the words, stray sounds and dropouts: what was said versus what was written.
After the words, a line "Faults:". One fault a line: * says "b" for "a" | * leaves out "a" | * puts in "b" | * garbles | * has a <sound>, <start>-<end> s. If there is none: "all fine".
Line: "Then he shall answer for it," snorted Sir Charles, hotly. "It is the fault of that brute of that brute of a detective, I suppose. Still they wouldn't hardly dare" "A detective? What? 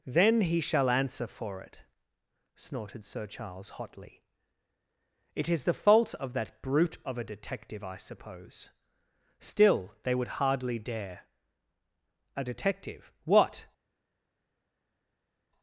"Then he shall answer for it," snorted Sir Charles, hotly. "It is the fault of that brute of a detective, I suppose. Still they would hardly dare" "A detective? What?
Faults:
* leaves out "that brute of"
* says "would" for "wouldn't"